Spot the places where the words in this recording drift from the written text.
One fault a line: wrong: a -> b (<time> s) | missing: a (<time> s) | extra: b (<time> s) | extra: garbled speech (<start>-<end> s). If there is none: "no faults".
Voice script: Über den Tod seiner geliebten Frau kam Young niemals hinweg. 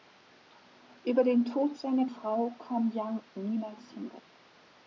missing: geliebten (2.0 s)